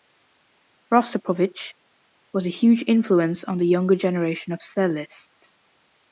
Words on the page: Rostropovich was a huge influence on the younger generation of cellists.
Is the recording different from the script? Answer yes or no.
no